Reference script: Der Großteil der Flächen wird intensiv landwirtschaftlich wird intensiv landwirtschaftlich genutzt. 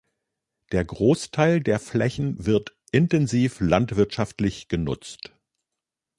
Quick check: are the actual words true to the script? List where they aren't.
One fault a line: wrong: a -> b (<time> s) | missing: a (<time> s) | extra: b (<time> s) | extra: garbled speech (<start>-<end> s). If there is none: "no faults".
missing: wird intensiv landwirtschaftlich (4.7 s)